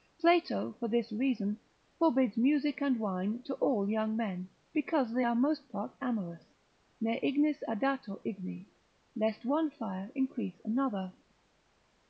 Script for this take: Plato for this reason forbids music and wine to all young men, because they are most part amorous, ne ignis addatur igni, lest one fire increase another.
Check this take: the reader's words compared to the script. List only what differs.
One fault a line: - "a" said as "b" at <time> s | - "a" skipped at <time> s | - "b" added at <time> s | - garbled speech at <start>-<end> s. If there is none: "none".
none